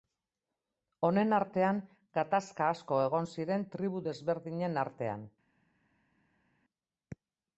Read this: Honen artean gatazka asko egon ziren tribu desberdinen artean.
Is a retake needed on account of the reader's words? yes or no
no